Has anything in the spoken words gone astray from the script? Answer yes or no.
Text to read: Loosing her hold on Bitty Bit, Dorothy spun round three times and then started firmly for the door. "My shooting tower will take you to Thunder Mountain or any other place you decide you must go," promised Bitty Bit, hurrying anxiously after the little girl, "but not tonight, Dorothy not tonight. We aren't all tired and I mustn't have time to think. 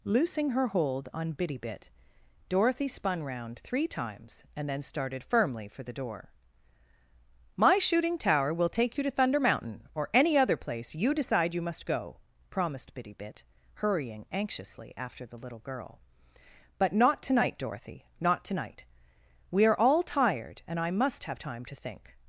yes